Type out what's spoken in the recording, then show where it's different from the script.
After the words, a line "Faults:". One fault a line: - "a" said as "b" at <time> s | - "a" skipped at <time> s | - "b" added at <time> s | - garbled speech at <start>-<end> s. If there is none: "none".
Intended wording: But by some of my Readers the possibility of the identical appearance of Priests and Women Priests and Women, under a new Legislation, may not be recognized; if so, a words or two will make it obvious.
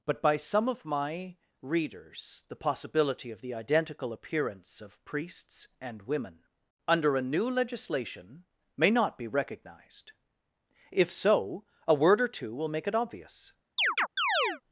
But by some of my Readers the possibility of the identical appearance of Priests and Women, under a new Legislation, may not be recognized; if so, a word or two will make it obvious.
Faults:
- "Priests and Women" skipped at 6.4 s
- "words" said as "word" at 11.9 s